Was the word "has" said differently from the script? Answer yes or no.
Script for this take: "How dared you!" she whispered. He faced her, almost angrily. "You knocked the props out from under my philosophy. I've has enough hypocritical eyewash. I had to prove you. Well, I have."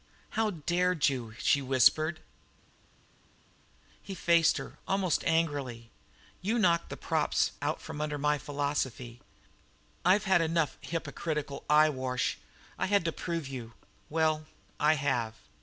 yes